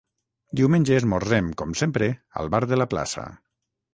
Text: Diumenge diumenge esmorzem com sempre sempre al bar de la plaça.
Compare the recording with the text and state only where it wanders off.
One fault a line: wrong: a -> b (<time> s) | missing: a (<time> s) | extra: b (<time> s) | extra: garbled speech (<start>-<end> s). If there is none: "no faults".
missing: diumenge (0.9 s)
missing: sempre (2.1 s)